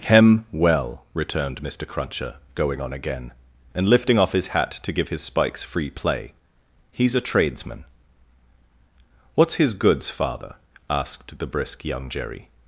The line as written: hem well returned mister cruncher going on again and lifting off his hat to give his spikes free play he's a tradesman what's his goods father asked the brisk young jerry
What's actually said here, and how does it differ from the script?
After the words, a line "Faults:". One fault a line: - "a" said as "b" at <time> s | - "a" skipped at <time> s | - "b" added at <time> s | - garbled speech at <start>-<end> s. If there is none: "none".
hem well returned mister cruncher going on again and lifting off his hat to give his spikes free play he's a tradesman what's his goods father asked the brisk young jerry
Faults:
none